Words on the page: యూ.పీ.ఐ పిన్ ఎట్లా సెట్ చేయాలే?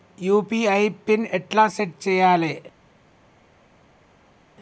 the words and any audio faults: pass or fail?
pass